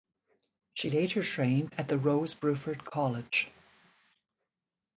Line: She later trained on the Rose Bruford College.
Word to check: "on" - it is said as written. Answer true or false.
false